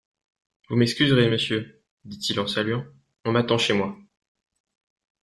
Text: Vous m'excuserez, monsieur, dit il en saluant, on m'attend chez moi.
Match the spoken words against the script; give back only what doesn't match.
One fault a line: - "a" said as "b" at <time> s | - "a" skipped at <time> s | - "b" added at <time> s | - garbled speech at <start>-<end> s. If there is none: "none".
none